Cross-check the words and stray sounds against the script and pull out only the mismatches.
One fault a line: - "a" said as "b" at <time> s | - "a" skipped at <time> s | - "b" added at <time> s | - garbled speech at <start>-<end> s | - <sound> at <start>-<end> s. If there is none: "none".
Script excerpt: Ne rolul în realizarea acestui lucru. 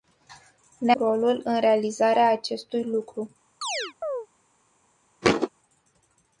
- chirp at 3.6-4.3 s
- thud at 5.2-5.5 s